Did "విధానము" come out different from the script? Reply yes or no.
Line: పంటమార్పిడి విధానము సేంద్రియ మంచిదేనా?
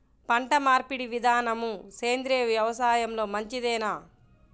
no